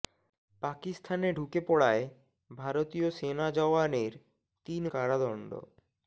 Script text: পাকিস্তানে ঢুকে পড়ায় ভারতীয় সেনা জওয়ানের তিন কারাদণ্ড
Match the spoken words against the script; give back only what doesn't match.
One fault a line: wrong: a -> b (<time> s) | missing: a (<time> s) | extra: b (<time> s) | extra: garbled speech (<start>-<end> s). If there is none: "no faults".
no faults